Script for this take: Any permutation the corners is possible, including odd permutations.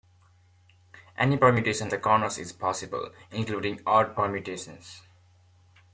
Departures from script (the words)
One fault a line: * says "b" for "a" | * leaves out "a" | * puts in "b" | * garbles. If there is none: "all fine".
all fine